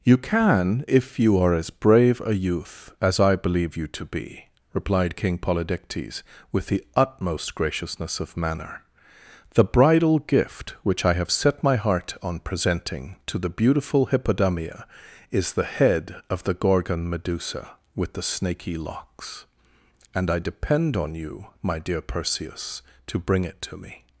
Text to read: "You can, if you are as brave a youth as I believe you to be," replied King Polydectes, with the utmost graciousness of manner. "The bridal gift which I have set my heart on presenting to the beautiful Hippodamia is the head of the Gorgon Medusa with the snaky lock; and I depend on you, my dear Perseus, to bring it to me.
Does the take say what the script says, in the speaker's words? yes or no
no